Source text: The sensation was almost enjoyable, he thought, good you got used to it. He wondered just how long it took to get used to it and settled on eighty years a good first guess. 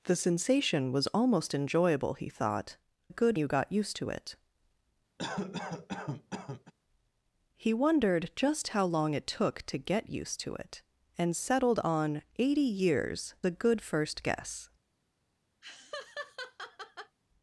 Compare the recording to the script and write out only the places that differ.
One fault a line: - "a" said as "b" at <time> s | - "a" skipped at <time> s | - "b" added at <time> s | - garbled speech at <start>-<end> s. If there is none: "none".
none